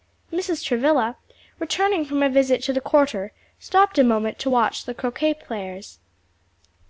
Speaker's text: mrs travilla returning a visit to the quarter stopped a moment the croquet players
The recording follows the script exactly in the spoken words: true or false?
false